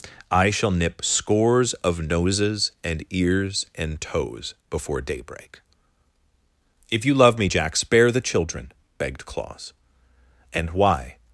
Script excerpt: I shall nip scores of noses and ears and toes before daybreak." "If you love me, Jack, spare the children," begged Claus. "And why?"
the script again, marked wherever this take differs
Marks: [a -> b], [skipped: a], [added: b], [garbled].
I shall nip scores of noses and ears and toes before daybreak." "If you love me, Jack, spare the children," begged Claus. "And why?"